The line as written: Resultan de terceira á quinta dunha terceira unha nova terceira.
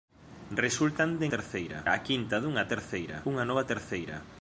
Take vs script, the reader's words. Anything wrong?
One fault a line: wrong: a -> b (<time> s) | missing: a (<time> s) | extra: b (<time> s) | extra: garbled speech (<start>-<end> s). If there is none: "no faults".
no faults